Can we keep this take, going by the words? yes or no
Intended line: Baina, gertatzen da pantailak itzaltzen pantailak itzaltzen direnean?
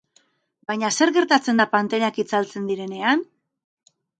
no